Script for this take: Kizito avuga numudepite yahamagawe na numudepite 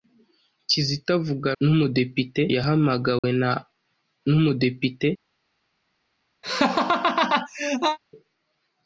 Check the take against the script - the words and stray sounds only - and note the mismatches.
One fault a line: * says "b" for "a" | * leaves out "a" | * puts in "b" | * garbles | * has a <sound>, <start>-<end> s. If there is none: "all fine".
* has a dropout, 3.2-3.2 s
* has a laugh, 6.4-8.0 s